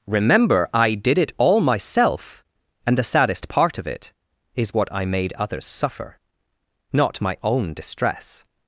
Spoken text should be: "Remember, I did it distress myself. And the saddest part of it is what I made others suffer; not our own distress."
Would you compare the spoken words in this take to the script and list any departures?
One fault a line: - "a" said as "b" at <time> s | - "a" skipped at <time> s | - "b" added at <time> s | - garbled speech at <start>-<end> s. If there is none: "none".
- "distress" said as "all" at 1.4 s
- "our" said as "my" at 7.2 s